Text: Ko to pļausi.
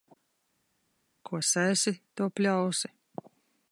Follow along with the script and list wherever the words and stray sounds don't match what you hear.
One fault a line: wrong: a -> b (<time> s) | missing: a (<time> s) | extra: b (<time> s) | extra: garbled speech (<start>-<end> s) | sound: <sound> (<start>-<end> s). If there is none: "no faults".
extra: sēsi (1.5 s)